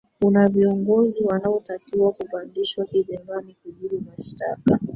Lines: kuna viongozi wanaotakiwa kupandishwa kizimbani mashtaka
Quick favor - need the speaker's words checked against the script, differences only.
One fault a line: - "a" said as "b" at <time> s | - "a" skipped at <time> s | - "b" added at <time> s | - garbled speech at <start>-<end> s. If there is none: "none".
- "kujibu" added at 3.6 s